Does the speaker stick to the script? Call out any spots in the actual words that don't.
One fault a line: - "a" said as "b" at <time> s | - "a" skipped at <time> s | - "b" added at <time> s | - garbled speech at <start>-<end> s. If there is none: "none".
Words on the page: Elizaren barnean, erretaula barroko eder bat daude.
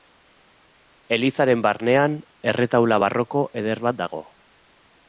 - "daude" said as "dago" at 4.0 s